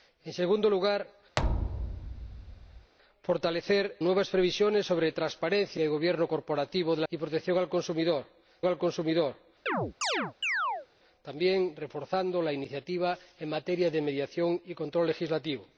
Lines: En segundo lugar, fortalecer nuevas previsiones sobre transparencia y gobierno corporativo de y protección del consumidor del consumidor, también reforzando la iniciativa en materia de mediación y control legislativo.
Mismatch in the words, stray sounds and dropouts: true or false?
true